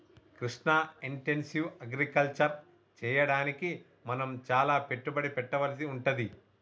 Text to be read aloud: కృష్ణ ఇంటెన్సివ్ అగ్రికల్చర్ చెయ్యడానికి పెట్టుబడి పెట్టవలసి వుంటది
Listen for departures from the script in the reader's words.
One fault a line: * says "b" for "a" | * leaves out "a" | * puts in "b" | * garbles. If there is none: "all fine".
* puts in "మనం చాల"